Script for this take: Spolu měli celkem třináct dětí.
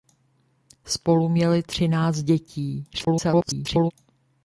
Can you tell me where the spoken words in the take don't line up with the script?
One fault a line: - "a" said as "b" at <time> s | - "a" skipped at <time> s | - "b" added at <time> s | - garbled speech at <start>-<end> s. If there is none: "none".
- "celkem" skipped at 1.6 s
- garbled speech at 2.9-3.9 s